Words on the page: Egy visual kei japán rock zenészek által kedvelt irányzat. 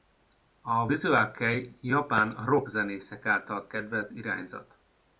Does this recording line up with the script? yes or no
no